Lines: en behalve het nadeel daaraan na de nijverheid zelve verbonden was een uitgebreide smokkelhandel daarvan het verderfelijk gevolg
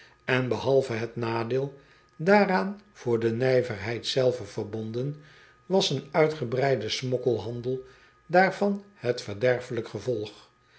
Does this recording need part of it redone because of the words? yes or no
yes